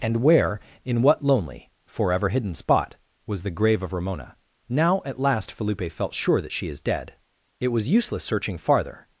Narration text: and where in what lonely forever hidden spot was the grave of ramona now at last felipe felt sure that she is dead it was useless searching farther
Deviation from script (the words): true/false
false